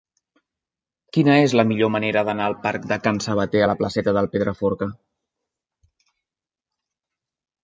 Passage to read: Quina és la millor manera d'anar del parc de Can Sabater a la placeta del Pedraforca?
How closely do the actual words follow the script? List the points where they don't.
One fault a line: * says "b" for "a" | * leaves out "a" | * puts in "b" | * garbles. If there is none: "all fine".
all fine